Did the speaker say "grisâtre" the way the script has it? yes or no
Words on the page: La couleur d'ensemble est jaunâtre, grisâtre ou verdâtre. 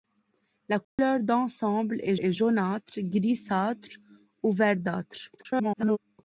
yes